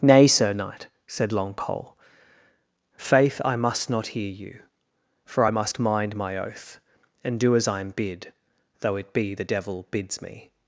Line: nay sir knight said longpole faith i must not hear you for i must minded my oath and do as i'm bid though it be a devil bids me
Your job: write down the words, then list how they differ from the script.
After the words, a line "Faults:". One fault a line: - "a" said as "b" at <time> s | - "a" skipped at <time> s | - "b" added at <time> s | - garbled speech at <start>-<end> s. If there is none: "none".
nay sir knight said longpole faith i must not hear you for i must mind my oath and do as i'm bid though it be the devil bids me
Faults:
- "minded" said as "mind" at 5.8 s
- "a" said as "the" at 9.3 s